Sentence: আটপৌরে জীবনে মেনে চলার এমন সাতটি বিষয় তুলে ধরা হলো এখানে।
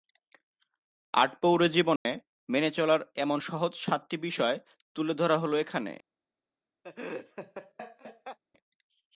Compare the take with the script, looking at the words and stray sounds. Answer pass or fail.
fail